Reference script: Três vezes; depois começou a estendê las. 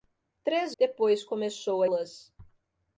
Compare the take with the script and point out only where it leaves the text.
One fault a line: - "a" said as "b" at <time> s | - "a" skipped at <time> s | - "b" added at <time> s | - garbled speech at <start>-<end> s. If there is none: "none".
- "vezes" skipped at 0.8 s
- "estendê" skipped at 1.9 s